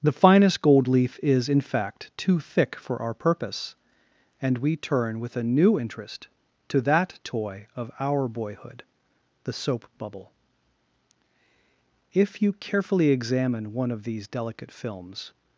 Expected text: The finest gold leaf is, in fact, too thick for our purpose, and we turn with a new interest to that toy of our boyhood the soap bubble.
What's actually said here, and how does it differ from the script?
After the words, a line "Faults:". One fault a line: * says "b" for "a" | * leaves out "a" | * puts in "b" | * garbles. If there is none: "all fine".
The finest gold leaf is, in fact, too thick for our purpose, and we turn with a new interest to that toy of our boyhood the soap bubble. If you carefully examine one of these delicate films
Faults:
* puts in "If you carefully examine one of these delicate films"